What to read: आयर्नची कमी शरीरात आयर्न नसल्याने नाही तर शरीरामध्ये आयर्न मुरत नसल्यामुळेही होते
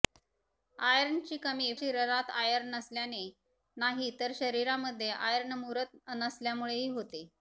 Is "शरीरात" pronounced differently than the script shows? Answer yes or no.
no